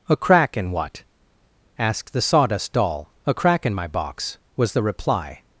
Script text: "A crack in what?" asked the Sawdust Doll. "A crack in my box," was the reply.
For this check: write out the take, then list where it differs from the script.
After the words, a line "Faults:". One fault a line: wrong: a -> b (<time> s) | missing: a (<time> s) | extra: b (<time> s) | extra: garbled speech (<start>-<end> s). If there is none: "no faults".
"A crack in what?" asked the Sawdust Doll. "A crack in my box," was the reply.
Faults:
no faults